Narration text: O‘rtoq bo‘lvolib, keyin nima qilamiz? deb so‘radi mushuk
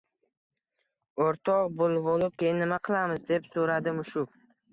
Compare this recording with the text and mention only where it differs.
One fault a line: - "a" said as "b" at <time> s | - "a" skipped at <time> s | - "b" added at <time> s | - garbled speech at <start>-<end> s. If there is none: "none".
none